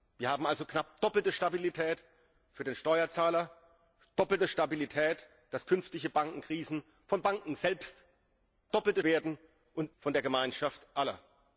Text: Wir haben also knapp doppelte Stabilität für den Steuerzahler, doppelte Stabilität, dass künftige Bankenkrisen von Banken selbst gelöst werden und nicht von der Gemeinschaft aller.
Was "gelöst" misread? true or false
true